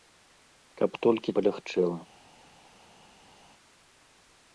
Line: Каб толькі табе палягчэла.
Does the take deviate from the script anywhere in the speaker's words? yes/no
yes